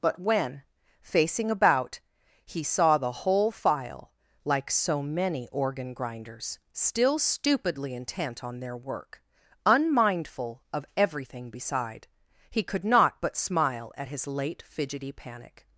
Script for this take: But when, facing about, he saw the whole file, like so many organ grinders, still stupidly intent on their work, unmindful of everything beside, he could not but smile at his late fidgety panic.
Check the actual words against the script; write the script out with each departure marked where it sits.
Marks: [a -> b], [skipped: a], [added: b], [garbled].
But when, facing about, he saw the whole file, like so many organ grinders, still stupidly intent on their work, unmindful of everything beside, he could not but smile at his late fidgety panic.